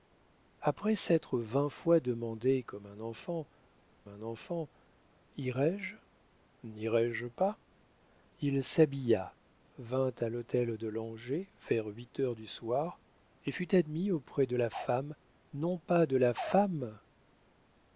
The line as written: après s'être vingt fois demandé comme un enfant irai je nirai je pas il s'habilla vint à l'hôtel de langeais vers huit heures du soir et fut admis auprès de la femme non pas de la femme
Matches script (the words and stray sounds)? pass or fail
fail